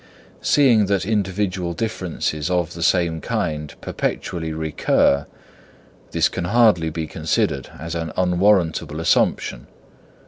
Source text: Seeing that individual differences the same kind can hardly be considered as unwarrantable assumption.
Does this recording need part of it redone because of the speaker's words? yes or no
yes